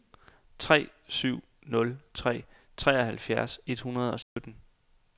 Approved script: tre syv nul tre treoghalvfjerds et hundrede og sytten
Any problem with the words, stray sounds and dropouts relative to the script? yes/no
yes